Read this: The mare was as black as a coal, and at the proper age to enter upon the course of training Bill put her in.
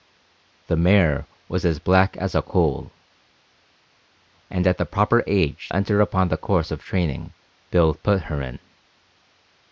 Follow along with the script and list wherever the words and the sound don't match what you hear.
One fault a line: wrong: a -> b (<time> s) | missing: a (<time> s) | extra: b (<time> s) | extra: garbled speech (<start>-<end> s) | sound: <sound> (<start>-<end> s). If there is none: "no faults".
missing: to (5.7 s)